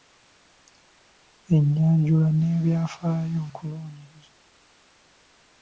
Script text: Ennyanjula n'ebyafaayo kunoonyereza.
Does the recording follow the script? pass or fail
pass